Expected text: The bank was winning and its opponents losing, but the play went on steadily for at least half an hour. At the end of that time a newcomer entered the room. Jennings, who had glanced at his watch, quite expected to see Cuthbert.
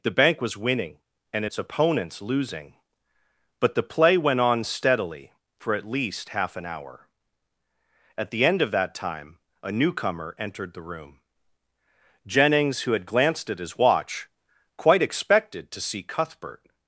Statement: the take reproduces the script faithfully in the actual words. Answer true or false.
true